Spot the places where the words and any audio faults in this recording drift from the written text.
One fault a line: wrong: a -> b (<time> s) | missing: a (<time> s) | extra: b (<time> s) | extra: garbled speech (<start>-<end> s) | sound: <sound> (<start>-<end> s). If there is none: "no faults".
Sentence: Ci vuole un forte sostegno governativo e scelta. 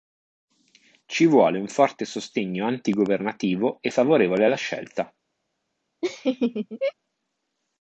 extra: anti (2.6 s)
extra: favorevole alla (3.9 s)
sound: laugh (6.0-6.9 s)